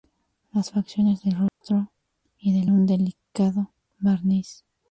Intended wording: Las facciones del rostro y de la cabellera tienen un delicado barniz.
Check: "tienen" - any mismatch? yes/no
yes